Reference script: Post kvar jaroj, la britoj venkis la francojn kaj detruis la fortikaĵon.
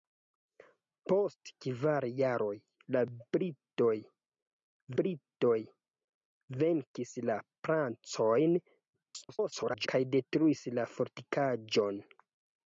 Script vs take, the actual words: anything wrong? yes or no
yes